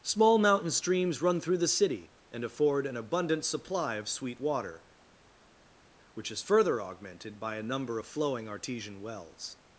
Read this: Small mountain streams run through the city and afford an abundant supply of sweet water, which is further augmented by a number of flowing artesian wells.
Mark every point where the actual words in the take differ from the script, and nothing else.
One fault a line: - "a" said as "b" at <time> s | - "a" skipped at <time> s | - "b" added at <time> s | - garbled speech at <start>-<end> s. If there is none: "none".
none